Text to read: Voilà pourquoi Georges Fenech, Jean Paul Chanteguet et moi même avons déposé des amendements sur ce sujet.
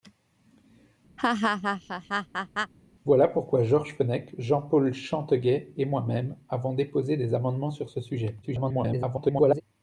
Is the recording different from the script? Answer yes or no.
yes